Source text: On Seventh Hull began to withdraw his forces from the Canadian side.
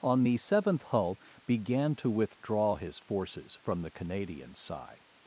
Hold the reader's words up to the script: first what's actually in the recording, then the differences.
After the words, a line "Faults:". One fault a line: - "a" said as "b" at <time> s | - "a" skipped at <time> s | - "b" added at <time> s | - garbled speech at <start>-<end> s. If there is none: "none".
On the Seventh Hull began to withdraw his forces from the Canadian side.
Faults:
- "the" added at 0.2 s